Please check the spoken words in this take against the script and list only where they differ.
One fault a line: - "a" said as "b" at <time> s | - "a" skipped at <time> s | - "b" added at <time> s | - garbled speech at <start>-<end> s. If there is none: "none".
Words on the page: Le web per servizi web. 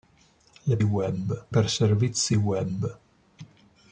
none